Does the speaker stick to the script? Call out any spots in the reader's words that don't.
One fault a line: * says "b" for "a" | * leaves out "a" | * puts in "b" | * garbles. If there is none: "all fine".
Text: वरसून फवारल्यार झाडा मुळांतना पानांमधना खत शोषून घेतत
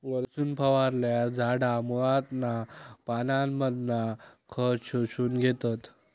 all fine